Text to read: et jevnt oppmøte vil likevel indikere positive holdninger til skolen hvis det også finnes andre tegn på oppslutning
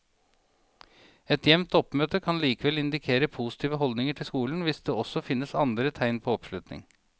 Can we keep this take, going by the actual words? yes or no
no